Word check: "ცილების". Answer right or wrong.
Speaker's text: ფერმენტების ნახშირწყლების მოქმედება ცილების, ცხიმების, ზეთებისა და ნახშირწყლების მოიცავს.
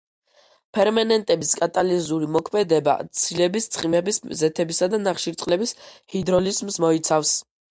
right